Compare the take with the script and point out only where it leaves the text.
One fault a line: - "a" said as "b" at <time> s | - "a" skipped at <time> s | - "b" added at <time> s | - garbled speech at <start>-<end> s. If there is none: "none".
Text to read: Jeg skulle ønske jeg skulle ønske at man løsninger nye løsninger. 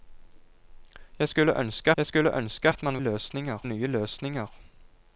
none